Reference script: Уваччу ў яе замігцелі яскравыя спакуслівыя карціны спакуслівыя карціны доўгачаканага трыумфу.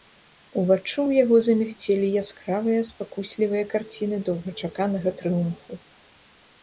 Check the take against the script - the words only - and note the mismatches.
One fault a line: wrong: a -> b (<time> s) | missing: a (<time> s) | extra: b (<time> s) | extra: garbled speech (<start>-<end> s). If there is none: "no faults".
wrong: яе -> яго (1.2 s)
missing: спакуслівыя карціны (4.2 s)